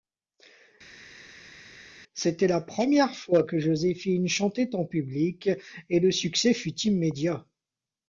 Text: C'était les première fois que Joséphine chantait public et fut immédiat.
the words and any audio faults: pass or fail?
fail